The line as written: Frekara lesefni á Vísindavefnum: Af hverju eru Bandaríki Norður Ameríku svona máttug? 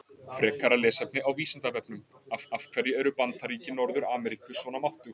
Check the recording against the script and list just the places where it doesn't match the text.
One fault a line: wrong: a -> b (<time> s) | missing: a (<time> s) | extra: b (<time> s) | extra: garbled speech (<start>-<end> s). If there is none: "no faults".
extra: Af (2.6 s)